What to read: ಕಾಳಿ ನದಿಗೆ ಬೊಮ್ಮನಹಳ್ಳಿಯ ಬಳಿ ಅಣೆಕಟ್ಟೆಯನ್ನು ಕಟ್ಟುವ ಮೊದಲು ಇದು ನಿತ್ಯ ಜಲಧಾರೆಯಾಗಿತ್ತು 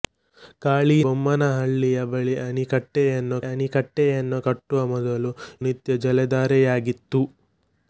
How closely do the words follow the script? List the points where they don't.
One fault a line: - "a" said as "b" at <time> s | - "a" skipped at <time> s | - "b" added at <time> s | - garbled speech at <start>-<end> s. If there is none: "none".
- "ನದಿಗೆ" skipped at 0.9 s
- "ಅಣೆಕಟ್ಟೆಯನ್ನು" added at 3.5 s
- "ಇದು" skipped at 5.3 s